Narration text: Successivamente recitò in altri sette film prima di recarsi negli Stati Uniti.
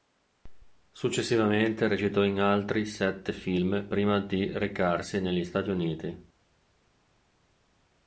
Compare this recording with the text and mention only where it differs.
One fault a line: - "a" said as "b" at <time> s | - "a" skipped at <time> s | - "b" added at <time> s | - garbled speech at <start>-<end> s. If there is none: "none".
none